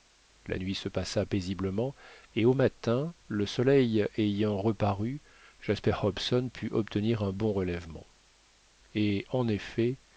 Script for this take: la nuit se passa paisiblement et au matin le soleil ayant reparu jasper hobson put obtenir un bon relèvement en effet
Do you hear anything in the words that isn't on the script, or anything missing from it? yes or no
yes